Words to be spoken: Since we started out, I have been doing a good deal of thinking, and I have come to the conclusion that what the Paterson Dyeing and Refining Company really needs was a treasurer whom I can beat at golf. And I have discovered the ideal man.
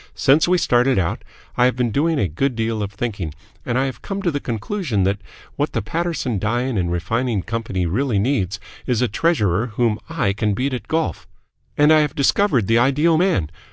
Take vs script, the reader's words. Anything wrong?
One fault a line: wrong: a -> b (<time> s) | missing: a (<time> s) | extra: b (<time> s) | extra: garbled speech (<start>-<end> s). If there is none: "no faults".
wrong: was -> is (8.9 s)